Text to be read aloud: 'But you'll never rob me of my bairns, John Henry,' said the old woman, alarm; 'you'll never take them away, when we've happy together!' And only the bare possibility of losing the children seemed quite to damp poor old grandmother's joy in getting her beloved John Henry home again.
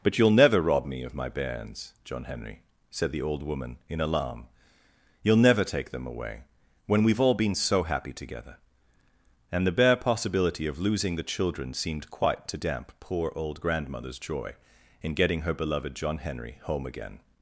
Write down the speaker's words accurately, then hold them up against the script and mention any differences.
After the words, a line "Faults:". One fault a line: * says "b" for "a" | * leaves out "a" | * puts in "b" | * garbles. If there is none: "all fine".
'But you'll never rob me of my bairns, John Henry,' said the old woman, in alarm; 'you'll never take them away, when we've all been so happy together!' And the bare possibility of losing the children seemed quite to damp poor old grandmother's joy in getting her beloved John Henry home again.
Faults:
* puts in "in"
* puts in "all been so"
* leaves out "only"